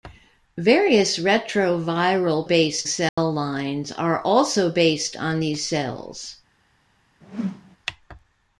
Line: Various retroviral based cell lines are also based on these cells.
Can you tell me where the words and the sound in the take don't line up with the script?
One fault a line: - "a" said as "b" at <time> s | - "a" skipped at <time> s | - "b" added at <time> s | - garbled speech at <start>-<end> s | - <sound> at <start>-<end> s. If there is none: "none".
- dropout at 3.1-3.2 s
- whoosh at 7.2-7.8 s